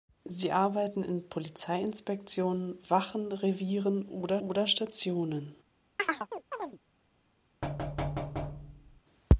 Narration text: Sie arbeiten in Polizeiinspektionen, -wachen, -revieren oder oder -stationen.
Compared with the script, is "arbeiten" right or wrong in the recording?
right